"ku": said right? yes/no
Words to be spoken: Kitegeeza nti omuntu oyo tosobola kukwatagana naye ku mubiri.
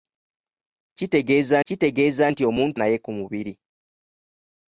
yes